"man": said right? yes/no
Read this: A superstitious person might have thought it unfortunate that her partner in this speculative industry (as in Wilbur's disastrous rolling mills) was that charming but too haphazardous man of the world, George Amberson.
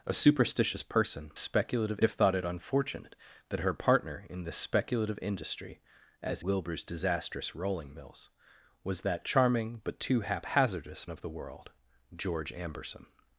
no